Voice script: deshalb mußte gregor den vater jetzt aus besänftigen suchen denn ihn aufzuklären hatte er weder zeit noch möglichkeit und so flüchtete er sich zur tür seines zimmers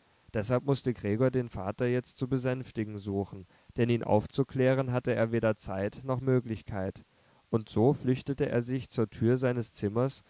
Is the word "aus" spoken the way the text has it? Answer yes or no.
no